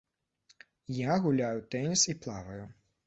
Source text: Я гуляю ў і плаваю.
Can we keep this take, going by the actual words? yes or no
no